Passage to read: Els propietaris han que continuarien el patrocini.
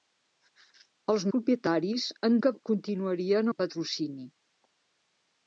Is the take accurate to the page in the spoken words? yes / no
yes